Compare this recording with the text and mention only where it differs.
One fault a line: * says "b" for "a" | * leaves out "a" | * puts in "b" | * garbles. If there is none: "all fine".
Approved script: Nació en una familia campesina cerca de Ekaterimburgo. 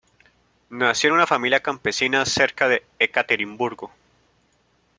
all fine